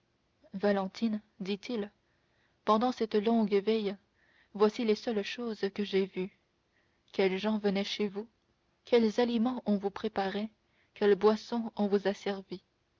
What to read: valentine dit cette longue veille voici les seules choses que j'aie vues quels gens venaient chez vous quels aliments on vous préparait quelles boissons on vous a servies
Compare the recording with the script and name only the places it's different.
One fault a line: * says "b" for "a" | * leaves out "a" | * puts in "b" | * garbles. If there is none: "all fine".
* puts in "il pendant"